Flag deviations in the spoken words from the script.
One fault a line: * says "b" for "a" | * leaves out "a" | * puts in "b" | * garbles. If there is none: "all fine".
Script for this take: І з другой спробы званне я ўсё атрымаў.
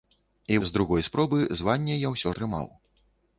all fine